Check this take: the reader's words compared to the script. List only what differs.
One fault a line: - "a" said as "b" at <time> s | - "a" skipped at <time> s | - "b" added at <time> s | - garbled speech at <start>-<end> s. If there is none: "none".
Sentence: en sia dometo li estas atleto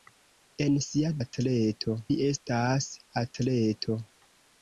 - "dometo" said as "atleto" at 1.2 s